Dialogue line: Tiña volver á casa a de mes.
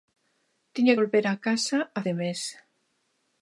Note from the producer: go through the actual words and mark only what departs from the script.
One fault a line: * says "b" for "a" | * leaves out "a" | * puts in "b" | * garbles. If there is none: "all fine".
all fine